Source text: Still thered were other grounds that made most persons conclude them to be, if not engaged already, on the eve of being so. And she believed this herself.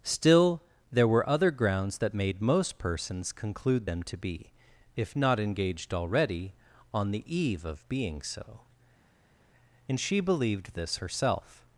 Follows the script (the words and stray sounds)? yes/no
no